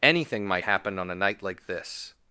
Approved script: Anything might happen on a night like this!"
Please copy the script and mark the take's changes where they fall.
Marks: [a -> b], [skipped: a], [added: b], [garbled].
Anything might happen on a night like this!"